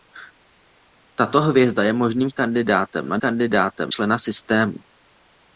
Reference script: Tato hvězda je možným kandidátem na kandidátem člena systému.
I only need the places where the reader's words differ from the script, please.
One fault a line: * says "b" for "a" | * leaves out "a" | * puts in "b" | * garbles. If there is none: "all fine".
all fine